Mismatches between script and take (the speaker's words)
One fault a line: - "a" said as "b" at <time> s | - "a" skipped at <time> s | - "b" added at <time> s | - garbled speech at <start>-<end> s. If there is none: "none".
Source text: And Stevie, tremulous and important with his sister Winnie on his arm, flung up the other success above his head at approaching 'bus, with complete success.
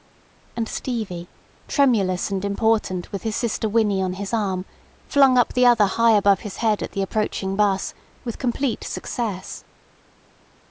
- "success" said as "high" at 5.8 s
- "the" added at 6.9 s